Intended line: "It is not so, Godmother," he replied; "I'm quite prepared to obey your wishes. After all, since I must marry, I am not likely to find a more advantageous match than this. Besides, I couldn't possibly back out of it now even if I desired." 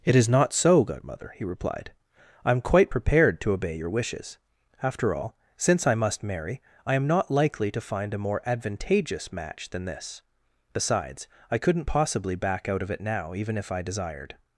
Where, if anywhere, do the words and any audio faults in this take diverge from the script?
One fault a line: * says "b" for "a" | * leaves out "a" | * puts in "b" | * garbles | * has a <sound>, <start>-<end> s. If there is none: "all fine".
all fine